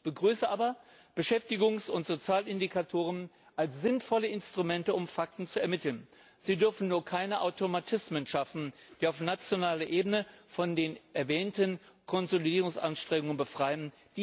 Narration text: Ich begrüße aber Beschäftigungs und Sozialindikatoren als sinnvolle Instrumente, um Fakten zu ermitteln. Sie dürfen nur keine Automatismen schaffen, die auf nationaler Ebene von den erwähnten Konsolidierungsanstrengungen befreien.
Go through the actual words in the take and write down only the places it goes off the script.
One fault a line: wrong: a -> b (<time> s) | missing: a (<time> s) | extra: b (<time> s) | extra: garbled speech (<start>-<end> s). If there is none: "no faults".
no faults